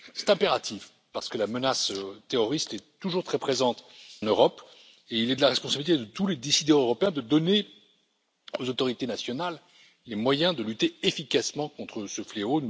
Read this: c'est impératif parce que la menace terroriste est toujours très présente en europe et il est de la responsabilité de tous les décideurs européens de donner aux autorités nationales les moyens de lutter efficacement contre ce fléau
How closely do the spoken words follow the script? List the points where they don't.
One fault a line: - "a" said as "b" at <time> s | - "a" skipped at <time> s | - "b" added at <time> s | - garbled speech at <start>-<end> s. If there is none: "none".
- "en" skipped at 3.8 s